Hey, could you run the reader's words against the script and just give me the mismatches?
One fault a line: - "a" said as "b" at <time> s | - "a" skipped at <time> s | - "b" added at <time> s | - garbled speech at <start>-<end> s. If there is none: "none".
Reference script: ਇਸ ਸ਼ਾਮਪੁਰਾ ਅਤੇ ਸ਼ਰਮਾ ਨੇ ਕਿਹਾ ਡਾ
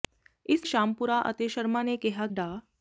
none